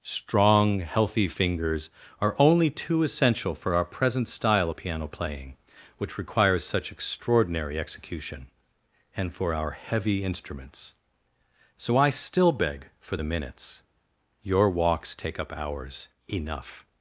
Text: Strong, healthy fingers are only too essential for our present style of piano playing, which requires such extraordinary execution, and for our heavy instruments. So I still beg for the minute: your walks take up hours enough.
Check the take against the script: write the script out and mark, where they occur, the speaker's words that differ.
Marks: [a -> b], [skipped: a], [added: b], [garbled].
Strong, healthy fingers are only too essential for our present style of piano playing, which requires such extraordinary execution, and for our heavy instruments. So I still beg for the [minute: -> minutes] your walks take up hours enough.